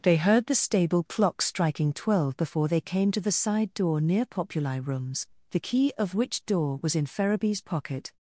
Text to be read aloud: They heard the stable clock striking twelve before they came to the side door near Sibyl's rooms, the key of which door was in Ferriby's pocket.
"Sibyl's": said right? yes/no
no